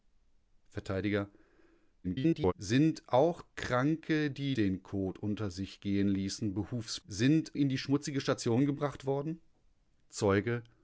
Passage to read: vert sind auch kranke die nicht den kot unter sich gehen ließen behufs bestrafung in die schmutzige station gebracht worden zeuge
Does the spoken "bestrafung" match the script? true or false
false